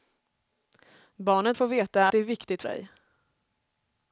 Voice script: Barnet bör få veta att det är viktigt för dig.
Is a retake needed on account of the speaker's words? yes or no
yes